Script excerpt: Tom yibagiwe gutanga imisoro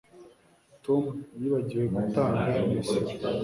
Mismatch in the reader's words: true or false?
false